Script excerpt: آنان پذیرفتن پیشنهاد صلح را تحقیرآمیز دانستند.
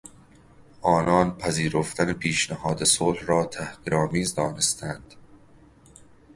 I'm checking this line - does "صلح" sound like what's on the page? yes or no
yes